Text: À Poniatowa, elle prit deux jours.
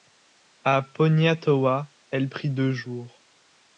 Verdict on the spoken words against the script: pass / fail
pass